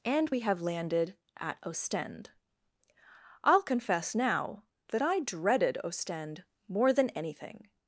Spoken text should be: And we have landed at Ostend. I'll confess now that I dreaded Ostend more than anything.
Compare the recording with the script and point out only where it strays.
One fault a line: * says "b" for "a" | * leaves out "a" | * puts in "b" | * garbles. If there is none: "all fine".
all fine